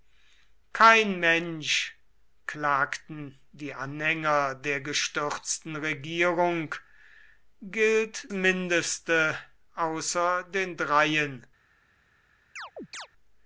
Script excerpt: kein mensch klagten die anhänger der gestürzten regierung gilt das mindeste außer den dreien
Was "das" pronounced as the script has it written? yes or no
no